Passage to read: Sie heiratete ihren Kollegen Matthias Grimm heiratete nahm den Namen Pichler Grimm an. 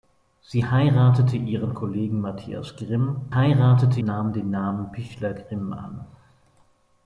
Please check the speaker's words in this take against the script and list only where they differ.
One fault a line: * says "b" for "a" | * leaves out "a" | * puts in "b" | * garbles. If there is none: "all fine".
all fine